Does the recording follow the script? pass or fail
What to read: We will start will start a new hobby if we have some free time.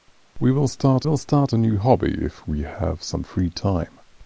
pass